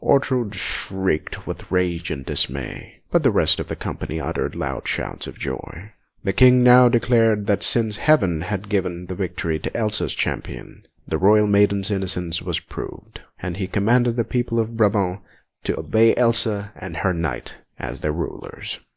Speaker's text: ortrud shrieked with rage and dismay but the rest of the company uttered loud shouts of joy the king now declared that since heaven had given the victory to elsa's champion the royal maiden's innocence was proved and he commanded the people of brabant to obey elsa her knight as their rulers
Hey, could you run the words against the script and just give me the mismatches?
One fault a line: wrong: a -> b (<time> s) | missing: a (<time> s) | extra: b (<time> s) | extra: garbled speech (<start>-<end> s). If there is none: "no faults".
extra: and (16.8 s)